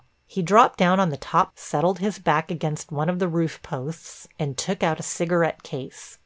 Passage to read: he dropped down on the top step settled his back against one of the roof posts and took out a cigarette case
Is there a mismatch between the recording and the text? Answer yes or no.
yes